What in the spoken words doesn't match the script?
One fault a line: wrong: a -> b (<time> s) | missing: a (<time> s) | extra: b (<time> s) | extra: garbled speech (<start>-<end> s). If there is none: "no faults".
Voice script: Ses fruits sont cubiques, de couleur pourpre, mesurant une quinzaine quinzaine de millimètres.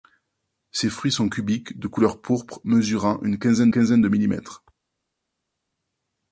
no faults